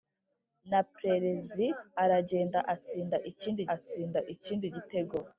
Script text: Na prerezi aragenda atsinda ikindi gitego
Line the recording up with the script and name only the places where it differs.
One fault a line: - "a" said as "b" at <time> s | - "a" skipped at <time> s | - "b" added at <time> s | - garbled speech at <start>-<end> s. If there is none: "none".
- "atsinda ikindi" added at 3.7 s